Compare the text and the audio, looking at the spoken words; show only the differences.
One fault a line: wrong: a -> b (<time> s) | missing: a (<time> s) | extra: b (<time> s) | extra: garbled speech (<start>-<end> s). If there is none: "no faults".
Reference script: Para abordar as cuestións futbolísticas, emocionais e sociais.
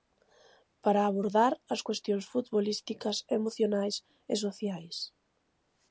no faults